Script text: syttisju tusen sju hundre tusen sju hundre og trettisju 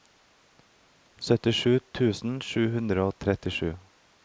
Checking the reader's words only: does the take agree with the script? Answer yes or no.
no